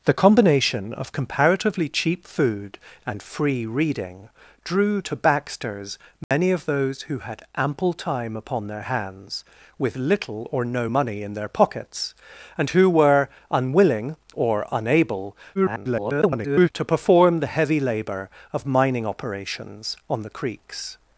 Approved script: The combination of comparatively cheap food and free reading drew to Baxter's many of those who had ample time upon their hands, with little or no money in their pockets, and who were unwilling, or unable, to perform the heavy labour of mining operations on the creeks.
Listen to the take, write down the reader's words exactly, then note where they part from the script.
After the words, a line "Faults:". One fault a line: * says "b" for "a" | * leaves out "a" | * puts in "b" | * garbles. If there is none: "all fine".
The combination of comparatively cheap food and free reading drew to Baxter's many of those who had ample time upon their hands, with little or no money in their pockets, and who were unwilling, or unable, [garbled] to perform the heavy labour of mining operations on the creeks.
Faults:
* garbles